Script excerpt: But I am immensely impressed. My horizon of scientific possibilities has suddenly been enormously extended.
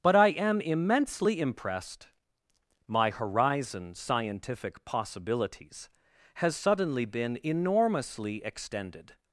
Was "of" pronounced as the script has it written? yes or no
no